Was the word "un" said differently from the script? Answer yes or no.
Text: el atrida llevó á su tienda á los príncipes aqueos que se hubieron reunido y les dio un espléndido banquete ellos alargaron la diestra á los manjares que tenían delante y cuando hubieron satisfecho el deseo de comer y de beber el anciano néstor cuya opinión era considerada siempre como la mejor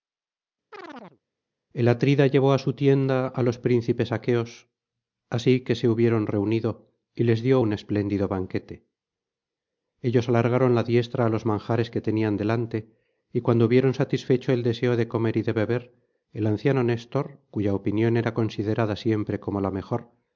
no